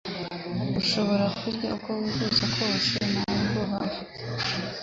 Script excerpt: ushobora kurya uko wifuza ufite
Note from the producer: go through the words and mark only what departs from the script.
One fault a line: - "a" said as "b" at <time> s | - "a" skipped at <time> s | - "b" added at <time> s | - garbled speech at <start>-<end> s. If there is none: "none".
- "kose nta bwoba" added at 2.5 s